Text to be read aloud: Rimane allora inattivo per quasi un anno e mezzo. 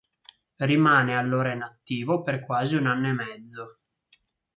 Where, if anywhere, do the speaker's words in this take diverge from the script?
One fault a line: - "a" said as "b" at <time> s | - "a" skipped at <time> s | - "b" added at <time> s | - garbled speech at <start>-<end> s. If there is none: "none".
none